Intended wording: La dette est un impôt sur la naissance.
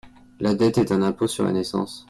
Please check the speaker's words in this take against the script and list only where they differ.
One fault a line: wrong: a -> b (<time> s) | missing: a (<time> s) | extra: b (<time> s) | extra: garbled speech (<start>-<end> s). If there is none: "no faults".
no faults